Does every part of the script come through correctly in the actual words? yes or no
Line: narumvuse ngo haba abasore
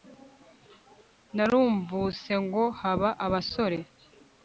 yes